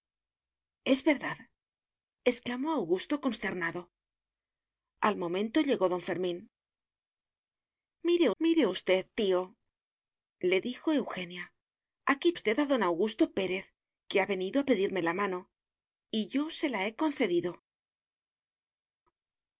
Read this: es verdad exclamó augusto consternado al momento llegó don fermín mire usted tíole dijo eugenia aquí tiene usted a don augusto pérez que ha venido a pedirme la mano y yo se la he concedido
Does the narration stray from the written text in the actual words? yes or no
yes